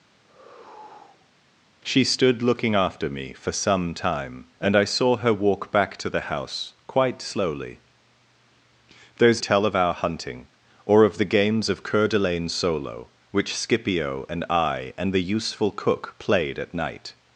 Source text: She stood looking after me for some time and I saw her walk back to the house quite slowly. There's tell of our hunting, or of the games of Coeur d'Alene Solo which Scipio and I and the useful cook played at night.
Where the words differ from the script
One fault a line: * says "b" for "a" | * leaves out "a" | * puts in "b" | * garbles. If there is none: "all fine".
all fine